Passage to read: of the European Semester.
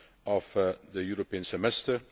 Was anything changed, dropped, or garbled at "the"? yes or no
no